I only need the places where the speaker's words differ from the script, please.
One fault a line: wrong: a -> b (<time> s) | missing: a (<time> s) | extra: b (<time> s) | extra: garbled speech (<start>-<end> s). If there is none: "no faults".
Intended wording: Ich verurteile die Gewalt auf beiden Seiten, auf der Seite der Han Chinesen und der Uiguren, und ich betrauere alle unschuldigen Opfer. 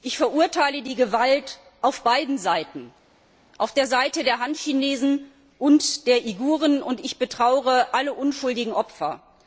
no faults